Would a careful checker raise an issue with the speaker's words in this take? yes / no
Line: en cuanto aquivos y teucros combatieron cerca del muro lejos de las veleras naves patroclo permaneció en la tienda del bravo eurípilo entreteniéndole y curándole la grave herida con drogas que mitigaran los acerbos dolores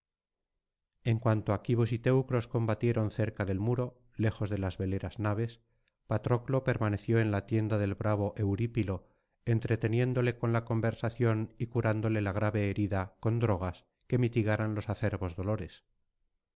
yes